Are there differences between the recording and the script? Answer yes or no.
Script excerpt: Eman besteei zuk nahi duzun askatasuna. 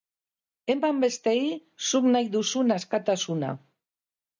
no